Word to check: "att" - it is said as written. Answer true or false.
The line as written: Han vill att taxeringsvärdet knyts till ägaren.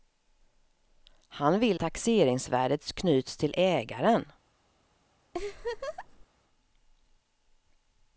false